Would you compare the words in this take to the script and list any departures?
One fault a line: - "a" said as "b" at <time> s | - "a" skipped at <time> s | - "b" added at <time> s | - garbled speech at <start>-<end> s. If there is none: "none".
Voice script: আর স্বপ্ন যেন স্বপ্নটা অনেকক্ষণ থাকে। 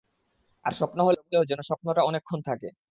- "হলেও" added at 1.0 s